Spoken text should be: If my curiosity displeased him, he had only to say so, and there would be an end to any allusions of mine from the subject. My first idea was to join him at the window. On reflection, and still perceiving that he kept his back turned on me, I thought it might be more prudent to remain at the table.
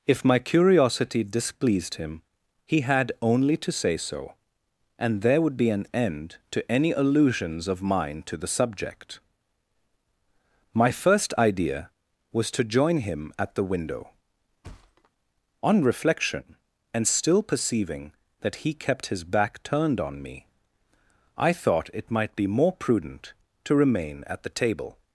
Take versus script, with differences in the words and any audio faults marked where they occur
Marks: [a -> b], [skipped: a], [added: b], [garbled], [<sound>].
If my curiosity displeased him, he had only to say so, and there would be an end to any allusions of mine [from -> to] the subject. My first idea was to join him at the window. [thud] On reflection, and still perceiving that he kept his back turned on me, I thought it might be more prudent to remain at the table.